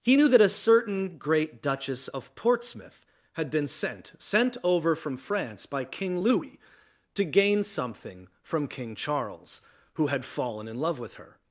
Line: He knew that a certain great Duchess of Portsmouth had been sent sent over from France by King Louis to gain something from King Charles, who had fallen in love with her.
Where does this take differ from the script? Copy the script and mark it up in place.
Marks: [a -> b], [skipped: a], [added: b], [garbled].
He knew that a certain great Duchess of Portsmouth had been sent sent over from France by King Louis to gain something from King Charles, who had fallen in love with her.